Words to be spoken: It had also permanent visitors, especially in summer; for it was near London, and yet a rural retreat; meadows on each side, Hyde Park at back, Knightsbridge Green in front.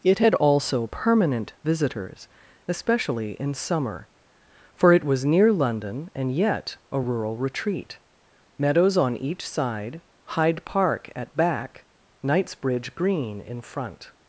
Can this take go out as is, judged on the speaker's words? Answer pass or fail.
pass